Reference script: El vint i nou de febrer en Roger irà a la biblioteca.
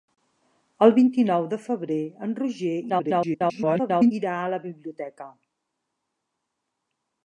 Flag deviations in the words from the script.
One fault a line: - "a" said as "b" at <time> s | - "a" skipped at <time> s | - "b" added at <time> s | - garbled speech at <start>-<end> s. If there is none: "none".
- garbled speech at 2.9-4.1 s